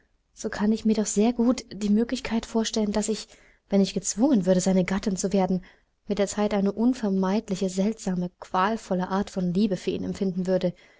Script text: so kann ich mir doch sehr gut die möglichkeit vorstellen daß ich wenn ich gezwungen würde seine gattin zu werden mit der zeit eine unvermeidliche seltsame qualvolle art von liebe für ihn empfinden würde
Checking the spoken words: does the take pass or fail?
pass